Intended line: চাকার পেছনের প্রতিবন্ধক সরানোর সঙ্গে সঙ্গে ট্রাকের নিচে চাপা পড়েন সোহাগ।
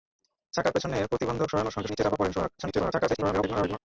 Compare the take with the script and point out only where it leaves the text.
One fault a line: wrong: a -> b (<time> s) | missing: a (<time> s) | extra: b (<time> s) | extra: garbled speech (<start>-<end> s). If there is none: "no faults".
missing: সঙ্গে ট্রাকের (1.9 s)
extra: garbled speech (2.6-3.8 s)